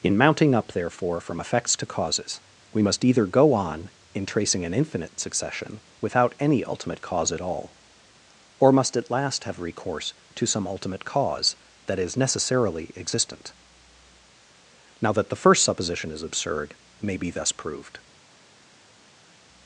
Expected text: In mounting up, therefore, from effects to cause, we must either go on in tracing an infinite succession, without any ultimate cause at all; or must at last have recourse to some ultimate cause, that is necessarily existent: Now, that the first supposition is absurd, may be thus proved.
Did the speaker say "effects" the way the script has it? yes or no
yes